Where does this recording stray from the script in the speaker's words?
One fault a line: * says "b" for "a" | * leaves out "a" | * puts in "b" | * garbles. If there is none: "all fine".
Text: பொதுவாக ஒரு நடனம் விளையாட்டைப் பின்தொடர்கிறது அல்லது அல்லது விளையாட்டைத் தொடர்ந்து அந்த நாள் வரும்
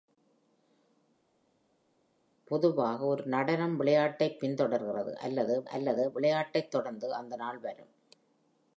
all fine